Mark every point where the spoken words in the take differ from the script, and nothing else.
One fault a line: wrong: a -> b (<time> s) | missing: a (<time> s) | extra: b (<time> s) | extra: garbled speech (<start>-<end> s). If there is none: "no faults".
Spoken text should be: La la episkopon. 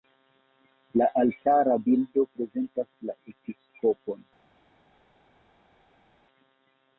extra: altara bildo prezentas (1.2 s)